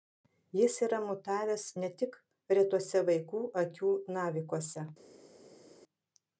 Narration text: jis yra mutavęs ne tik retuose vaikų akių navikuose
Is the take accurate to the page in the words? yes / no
yes